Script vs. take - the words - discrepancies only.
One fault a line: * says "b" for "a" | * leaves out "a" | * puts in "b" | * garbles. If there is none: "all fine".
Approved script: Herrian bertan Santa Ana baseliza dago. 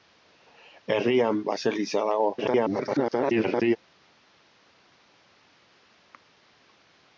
* leaves out "bertan Santa Ana"
* garbles